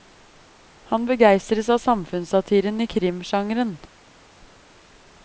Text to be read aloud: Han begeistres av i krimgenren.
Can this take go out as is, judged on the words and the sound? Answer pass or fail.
fail